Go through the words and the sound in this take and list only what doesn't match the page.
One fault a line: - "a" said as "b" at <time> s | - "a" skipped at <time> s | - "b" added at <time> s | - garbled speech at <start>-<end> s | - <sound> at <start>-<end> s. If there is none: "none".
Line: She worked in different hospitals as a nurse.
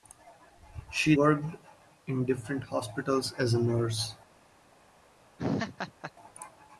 - laugh at 5.4-6.1 s